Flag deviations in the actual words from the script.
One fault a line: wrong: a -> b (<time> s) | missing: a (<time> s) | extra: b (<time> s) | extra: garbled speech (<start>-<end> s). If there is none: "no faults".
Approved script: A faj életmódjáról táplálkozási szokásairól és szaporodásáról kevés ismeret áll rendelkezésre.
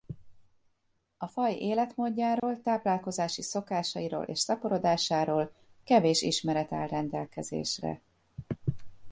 no faults